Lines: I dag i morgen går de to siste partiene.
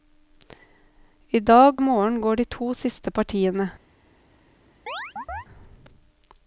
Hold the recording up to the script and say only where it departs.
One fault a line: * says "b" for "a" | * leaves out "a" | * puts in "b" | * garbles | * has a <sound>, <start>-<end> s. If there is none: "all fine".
* has a chirp, 4.9-5.5 s